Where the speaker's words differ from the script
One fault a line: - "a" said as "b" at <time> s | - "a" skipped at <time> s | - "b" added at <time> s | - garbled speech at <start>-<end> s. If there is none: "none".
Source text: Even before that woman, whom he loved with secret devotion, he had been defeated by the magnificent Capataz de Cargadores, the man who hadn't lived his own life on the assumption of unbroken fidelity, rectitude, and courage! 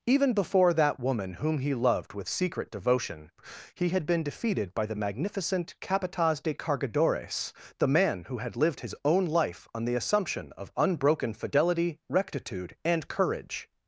- "hadn't" said as "had" at 8.4 s